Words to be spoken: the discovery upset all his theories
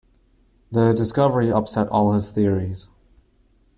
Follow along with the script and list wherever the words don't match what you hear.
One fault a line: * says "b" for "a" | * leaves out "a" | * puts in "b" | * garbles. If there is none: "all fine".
all fine